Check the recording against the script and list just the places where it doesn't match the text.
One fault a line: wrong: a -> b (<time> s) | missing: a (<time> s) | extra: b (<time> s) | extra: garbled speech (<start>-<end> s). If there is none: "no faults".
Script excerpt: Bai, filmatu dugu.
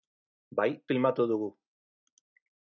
no faults